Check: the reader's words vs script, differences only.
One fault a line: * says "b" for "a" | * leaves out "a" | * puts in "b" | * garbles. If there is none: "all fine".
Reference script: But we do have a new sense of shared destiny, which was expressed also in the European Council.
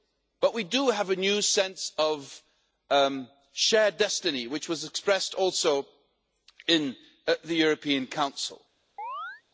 all fine